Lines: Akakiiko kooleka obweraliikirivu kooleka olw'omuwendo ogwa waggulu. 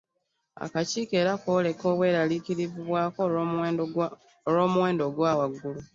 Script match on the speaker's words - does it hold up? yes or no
no